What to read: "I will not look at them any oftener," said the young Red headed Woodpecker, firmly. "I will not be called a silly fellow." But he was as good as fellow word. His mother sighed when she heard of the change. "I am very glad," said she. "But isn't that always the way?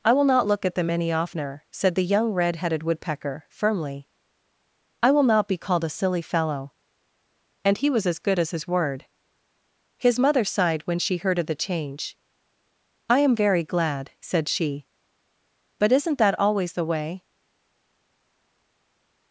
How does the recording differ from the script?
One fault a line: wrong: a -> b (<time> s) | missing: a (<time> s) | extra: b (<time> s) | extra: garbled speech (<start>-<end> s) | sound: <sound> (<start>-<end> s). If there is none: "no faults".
wrong: But -> And (7.6 s)
wrong: fellow -> his (8.5 s)